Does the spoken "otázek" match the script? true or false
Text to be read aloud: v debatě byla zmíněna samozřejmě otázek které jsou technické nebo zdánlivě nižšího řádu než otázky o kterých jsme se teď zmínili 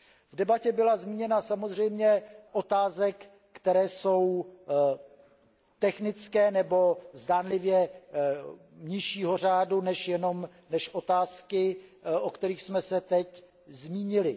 true